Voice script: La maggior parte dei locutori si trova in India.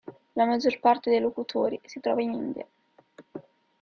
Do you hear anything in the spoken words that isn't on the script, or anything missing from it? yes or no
no